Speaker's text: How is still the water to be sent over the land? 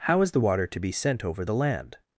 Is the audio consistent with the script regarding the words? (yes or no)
no